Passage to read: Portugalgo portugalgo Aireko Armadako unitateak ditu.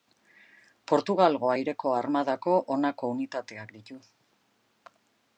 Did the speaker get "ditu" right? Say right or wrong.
right